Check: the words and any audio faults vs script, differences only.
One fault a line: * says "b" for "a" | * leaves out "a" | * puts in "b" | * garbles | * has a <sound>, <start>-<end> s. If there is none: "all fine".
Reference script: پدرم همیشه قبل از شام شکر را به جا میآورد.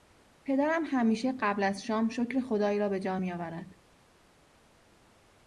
* puts in "خدای"